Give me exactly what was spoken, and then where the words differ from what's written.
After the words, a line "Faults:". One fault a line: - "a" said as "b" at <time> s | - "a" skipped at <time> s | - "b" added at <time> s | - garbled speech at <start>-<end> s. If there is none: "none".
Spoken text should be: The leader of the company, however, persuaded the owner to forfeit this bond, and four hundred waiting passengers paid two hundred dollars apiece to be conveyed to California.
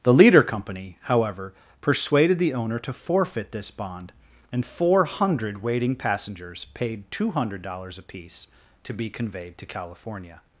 The leader company, however, persuaded the owner to forfeit this bond, and four hundred waiting passengers paid two hundred dollars apiece to be conveyed to California.
Faults:
- "of the" skipped at 0.4 s